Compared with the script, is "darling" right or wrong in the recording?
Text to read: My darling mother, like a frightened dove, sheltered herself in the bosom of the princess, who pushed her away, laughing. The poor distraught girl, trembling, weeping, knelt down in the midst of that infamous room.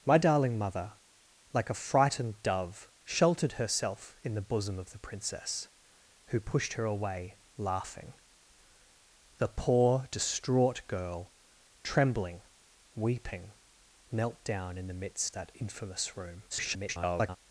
right